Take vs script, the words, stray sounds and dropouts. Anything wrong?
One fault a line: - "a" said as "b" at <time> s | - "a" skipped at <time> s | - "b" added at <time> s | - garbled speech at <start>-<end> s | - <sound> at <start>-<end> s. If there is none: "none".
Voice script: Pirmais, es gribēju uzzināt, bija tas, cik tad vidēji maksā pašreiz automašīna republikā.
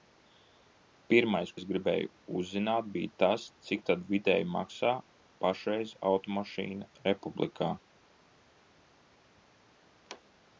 none